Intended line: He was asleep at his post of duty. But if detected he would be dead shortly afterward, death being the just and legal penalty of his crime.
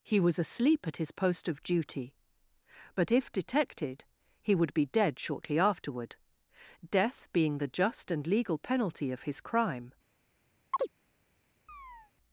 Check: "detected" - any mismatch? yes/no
no